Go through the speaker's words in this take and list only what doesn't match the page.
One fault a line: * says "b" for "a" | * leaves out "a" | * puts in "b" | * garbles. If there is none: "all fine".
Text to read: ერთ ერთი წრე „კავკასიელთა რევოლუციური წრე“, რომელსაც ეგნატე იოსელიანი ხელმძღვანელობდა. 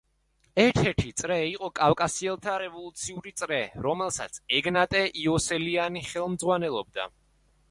* puts in "იყო"